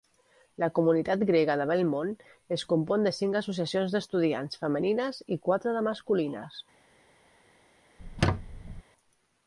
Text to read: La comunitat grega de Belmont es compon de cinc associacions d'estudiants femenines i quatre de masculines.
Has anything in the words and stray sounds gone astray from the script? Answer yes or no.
yes